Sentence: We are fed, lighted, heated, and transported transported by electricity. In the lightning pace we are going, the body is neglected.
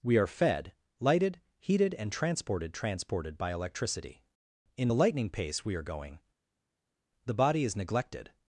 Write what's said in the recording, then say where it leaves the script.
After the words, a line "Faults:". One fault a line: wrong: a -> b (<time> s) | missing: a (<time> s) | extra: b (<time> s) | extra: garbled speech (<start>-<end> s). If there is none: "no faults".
We are fed, lighted, heated, and transported transported by electricity. In the lightning pace we are going, the body is neglected.
Faults:
no faults